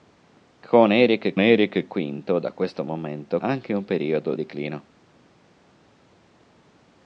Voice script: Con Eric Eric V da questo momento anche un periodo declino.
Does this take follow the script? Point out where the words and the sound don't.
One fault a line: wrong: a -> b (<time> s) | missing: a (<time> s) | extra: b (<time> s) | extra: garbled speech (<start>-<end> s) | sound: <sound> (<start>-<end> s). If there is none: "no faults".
no faults